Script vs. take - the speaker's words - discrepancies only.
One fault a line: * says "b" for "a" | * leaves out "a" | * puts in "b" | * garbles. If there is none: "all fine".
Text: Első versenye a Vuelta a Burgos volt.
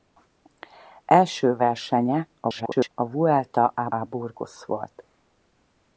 * garbles
* puts in "a"